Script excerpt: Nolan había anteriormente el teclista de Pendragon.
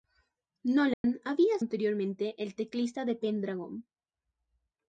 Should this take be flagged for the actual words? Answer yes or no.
no